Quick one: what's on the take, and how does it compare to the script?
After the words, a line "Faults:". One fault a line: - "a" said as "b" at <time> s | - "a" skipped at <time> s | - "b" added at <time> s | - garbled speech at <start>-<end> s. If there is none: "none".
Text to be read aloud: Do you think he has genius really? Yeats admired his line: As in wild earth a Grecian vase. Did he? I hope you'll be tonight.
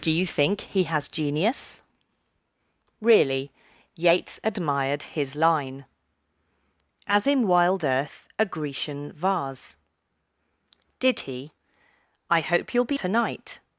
Do you think he has genius really? Yeats admired his line: As in wild earth a Grecian vase. Did he? I hope you'll be tonight.
Faults:
none